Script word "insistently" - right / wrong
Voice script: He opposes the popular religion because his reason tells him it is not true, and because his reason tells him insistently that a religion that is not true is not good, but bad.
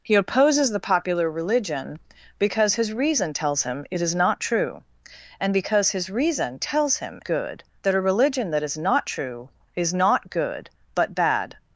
wrong